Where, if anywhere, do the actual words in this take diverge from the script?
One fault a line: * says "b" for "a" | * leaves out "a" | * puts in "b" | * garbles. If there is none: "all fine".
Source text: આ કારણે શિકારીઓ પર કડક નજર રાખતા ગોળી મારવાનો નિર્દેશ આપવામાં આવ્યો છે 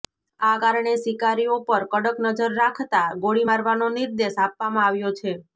all fine